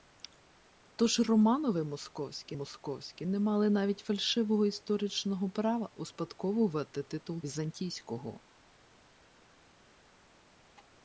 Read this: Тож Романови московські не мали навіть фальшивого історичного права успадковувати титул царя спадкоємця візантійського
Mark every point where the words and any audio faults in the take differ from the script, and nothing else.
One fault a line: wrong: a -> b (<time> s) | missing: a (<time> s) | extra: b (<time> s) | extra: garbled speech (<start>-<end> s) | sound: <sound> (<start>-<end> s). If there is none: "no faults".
extra: московські (2.5 s)
missing: царя спадкоємця (7.4 s)